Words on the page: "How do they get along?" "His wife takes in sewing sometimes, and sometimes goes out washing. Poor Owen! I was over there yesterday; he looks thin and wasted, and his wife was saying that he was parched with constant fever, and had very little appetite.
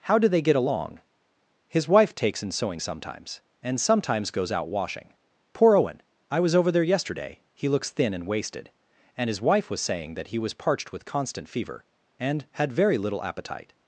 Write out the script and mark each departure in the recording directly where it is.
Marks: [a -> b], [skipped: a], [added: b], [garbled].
"How do they get along?" "His wife takes in sewing sometimes, and sometimes goes out washing. Poor Owen! I was over there yesterday; he looks thin and wasted, and his wife was saying that he was parched with constant fever, and had very little appetite.